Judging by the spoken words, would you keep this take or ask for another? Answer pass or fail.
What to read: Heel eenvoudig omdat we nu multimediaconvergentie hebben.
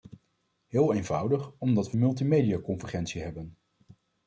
fail